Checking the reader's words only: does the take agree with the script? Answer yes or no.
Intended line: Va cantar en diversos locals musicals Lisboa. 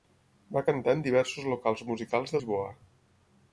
yes